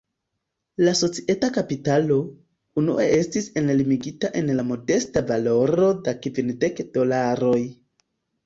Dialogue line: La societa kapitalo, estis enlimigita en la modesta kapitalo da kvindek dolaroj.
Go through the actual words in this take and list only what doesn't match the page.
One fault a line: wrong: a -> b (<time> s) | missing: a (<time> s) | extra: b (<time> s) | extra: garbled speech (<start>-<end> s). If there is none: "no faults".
extra: unue (2.8 s)
wrong: kapitalo -> valoro (5.3 s)